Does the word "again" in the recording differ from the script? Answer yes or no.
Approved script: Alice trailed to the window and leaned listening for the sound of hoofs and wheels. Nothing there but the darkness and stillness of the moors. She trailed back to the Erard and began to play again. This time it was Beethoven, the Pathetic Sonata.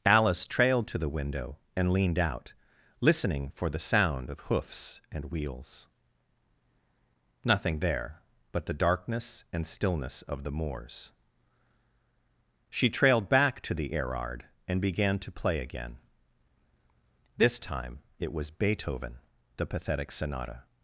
no